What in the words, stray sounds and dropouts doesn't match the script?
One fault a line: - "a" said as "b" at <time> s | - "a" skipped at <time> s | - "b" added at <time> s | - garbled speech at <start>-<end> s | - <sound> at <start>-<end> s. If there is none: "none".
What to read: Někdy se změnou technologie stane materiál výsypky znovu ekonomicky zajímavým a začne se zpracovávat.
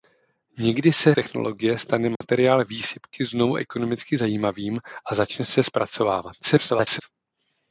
- "změnou" skipped at 1.1 s
- dropout at 2.2-2.2 s
- garbled speech at 6.4-7.0 s